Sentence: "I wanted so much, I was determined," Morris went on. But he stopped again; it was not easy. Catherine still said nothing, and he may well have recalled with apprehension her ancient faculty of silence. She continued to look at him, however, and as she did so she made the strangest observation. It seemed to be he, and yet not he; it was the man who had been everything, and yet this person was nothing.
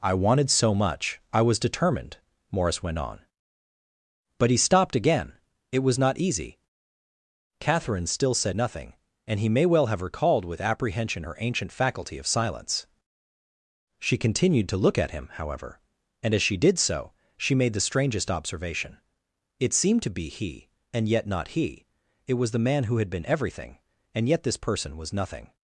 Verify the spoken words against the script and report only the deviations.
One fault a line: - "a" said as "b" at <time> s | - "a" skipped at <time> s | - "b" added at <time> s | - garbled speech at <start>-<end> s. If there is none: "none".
none